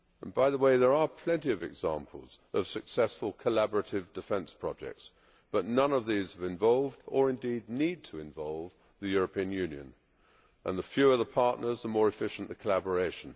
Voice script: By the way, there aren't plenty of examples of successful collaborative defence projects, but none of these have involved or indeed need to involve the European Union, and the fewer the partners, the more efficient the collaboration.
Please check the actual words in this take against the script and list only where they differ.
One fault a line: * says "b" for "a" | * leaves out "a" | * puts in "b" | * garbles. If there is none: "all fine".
* says "are" for "aren't"